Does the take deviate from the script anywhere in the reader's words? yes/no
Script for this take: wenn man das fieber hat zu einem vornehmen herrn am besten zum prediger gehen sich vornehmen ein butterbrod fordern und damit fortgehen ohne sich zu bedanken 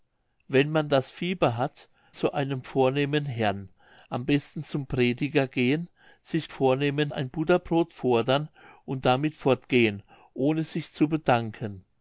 no